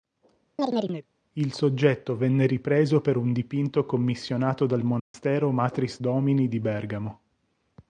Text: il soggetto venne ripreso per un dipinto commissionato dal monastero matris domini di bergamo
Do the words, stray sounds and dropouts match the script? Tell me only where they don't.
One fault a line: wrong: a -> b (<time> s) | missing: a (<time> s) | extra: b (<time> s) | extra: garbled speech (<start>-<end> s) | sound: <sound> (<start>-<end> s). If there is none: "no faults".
sound: chirp (0.6-1.1 s)
sound: dropout (5.0-5.1 s)